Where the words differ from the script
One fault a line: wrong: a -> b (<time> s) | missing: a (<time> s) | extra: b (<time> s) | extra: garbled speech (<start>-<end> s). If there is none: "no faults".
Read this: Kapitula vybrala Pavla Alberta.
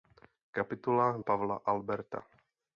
missing: vybrala (1.2 s)